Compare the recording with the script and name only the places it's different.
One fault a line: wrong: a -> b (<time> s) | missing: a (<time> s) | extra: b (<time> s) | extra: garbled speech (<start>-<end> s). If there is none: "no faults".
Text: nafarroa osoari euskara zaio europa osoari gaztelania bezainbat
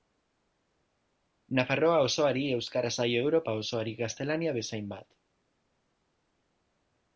no faults